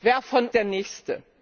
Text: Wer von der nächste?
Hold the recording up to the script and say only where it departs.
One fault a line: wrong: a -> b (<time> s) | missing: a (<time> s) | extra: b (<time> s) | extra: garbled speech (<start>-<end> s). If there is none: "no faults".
no faults